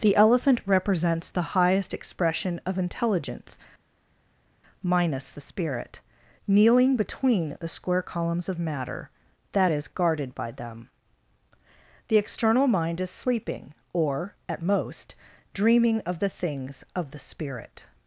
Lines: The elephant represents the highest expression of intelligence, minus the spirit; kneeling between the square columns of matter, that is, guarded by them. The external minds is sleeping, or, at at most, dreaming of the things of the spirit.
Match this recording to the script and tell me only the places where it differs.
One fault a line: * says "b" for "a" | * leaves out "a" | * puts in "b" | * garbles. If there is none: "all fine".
* says "mind" for "minds"
* leaves out "at"